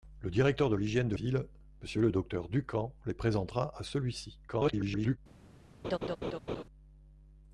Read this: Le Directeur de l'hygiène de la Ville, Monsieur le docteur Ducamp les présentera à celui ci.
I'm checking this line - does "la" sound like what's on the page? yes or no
no